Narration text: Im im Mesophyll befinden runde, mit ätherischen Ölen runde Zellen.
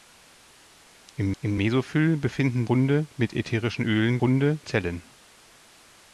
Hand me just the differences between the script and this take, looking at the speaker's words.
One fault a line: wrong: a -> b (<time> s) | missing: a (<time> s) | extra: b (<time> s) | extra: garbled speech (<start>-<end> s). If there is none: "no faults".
no faults